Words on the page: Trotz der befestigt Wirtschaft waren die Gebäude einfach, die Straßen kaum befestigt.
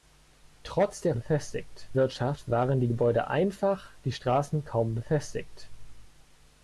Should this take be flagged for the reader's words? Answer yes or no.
no